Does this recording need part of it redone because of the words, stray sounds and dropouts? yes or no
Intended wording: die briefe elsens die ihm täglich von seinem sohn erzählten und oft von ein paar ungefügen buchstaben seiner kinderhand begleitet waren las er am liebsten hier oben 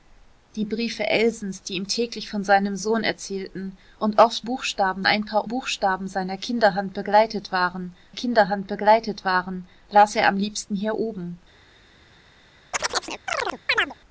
yes